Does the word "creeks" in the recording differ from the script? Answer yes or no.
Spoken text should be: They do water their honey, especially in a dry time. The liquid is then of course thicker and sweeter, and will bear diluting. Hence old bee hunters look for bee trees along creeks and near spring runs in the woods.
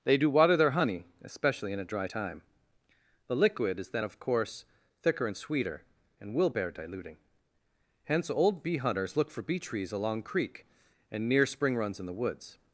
yes